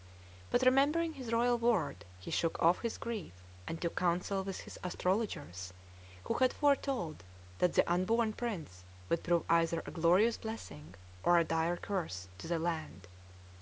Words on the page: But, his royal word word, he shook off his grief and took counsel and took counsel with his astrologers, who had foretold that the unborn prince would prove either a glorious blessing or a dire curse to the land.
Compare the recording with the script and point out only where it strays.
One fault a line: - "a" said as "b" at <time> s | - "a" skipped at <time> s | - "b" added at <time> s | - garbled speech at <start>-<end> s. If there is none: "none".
- "remembering" added at 0.6 s
- "word" skipped at 2.0 s
- "and took counsel" skipped at 4.4 s